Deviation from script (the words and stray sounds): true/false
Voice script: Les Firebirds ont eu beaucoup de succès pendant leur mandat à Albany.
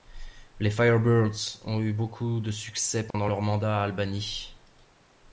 true